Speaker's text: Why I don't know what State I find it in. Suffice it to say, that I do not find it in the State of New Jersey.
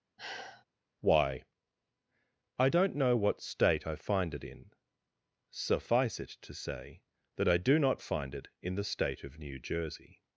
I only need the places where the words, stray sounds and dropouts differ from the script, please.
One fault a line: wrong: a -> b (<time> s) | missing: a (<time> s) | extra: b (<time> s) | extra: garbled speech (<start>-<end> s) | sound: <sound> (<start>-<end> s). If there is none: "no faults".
sound: sigh (0.2-0.6 s)